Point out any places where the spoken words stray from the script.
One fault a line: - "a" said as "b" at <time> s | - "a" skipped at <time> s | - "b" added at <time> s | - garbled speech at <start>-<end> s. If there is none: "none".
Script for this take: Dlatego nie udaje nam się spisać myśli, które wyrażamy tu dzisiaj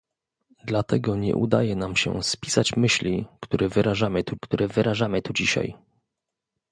- "które wyrażamy tu" added at 4.4 s